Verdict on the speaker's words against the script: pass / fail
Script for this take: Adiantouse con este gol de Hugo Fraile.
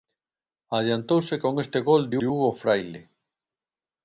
fail